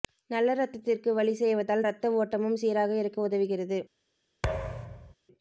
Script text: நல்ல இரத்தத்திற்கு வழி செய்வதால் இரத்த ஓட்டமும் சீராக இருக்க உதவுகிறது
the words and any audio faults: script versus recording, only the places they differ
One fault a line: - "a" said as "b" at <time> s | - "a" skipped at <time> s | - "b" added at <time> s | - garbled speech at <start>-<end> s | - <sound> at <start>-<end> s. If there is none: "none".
- thud at 4.4-5.1 s